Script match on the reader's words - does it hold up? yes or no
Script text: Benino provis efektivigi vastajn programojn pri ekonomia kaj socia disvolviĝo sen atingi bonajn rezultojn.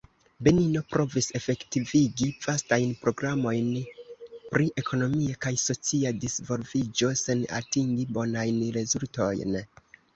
yes